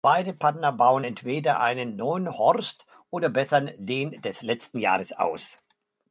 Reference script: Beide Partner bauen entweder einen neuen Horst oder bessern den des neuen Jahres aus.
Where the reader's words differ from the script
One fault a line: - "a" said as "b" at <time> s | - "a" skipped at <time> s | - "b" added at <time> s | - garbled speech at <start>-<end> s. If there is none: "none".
- "neuen" said as "letzten" at 4.4 s